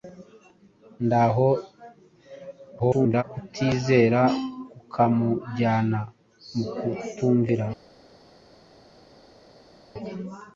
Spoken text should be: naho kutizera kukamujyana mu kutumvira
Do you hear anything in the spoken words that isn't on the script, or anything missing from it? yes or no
yes